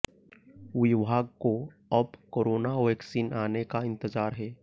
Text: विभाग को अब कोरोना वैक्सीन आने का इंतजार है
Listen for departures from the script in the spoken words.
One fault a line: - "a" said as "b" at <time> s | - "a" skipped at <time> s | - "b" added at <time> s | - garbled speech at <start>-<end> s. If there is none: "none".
none